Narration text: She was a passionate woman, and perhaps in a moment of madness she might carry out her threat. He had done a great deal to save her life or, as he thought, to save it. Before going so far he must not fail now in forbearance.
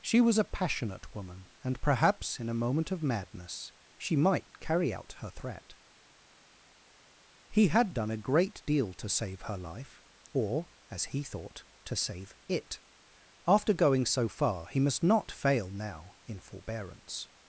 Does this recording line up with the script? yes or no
no